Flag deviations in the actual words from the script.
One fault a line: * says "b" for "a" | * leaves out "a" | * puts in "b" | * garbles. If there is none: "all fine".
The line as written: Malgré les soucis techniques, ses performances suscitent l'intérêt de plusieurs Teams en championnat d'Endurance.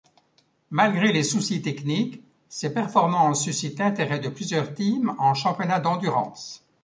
all fine